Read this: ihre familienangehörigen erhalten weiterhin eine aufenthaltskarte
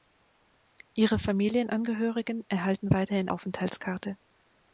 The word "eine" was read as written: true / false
false